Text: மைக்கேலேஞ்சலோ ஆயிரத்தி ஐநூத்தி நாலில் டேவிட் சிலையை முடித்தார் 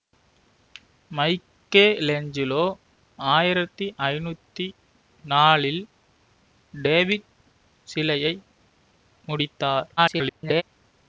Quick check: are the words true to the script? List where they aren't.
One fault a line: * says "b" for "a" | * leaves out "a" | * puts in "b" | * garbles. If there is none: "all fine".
* garbles